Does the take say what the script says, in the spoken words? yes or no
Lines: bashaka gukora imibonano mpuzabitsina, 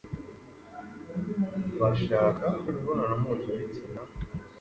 no